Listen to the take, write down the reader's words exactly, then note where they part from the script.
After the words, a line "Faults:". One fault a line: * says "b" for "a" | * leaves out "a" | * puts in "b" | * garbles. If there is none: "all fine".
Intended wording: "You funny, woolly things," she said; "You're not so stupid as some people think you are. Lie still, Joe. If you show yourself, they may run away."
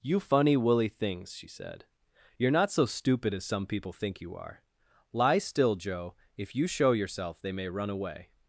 "You funny, woolly things," she said; "You're not so stupid as some people think you are. Lie still, Joe. If you show yourself, they may run away."
Faults:
all fine